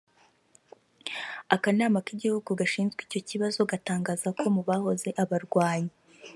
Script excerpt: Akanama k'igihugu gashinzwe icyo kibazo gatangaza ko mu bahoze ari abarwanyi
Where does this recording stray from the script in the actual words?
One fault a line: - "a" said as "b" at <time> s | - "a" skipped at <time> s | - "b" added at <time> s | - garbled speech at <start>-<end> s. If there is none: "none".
- "ari" skipped at 5.1 s